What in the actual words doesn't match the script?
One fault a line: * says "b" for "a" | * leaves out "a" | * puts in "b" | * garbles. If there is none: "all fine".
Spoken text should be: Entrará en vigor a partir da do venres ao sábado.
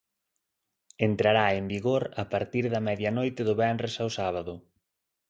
* puts in "medianoite"